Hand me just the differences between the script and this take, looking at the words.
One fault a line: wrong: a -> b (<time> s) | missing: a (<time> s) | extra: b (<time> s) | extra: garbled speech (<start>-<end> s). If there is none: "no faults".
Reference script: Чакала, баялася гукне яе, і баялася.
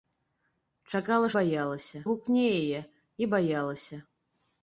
no faults